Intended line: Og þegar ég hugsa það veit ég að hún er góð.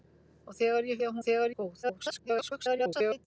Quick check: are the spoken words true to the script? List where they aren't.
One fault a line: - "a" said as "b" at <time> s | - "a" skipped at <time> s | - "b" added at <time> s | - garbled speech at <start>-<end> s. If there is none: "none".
- "hugsa það veit" skipped at 1.0 s
- "hún" said as "þegar" at 1.3 s
- garbled speech at 1.8-3.3 s